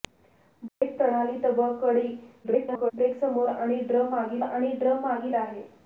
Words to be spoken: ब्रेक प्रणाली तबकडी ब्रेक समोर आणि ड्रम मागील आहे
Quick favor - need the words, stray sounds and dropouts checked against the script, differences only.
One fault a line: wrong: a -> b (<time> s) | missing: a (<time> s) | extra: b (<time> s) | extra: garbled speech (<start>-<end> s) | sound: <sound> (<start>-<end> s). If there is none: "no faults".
sound: dropout (0.7-0.8 s)
extra: garbled speech (2.4-2.9 s)
extra: आणि ड्रम मागील (4.4 s)